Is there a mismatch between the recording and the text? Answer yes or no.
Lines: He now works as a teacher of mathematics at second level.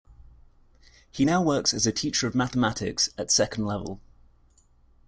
no